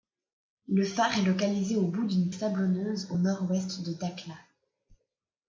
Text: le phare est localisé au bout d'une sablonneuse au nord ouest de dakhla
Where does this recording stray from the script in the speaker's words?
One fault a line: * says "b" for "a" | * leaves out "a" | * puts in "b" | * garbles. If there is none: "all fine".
all fine